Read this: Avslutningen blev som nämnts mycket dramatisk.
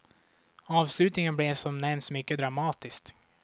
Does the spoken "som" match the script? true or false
true